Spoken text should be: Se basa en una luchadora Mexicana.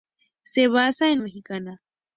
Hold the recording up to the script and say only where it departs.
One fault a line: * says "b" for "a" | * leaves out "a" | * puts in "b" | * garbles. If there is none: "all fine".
* leaves out "una luchadora"